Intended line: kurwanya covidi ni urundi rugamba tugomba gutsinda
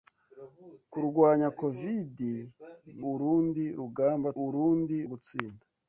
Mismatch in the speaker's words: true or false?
true